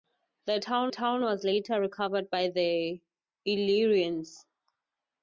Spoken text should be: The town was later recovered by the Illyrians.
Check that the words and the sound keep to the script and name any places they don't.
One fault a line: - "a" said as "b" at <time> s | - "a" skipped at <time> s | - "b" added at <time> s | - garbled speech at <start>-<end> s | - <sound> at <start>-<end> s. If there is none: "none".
- "town" added at 0.9 s